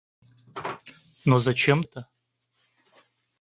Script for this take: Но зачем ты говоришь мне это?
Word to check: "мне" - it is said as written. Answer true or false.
false